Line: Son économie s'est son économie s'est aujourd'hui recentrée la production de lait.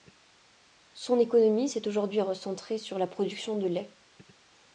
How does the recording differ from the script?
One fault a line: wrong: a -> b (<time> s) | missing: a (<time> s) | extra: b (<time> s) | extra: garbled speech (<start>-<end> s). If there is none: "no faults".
missing: son économie s'est (1.9 s)
extra: sur (2.8 s)